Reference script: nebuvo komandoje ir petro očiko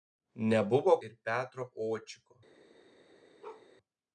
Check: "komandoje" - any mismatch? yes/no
yes